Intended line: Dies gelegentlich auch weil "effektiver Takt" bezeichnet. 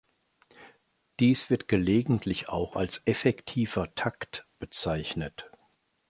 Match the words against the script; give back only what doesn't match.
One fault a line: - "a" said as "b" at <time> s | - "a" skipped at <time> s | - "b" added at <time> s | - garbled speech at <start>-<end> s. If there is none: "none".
- "wird" added at 1.5 s
- "weil" said as "als" at 2.8 s